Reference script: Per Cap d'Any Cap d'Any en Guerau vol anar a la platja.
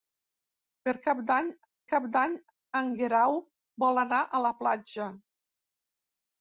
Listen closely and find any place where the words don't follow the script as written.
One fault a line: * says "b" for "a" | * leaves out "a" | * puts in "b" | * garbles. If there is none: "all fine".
all fine